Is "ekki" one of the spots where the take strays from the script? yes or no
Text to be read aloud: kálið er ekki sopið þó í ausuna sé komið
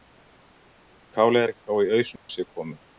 yes